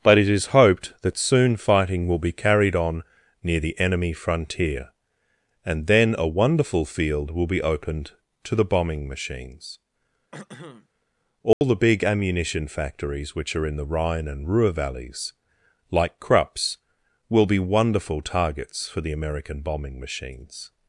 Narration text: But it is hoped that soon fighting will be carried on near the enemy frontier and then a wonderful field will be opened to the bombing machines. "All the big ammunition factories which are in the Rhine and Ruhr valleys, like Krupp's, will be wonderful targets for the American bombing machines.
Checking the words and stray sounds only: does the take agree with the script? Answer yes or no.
no